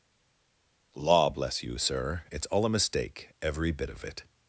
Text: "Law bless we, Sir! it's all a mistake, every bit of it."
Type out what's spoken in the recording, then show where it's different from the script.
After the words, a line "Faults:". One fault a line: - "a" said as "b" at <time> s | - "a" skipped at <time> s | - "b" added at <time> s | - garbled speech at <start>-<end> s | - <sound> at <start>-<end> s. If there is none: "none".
"Law bless you, Sir! it's all a mistake, every bit of it."
Faults:
- "we" said as "you" at 1.6 s